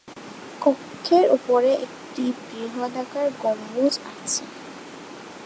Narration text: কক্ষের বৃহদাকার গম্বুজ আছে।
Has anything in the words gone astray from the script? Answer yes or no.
yes